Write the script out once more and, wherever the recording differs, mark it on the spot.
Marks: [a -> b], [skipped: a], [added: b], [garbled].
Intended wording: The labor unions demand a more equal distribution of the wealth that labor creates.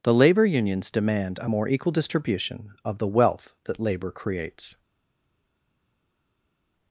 The labor unions demand a more equal distribution of the wealth that labor creates.